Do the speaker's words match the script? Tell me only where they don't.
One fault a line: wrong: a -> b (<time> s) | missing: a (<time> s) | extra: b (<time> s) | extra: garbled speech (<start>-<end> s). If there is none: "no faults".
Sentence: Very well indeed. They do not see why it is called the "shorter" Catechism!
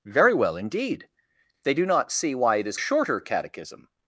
missing: called the (2.8 s)